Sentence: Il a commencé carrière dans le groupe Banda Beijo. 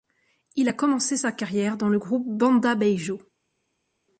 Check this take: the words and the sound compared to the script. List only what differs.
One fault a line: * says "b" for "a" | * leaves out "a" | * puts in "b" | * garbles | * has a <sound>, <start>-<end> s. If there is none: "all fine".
* puts in "sa"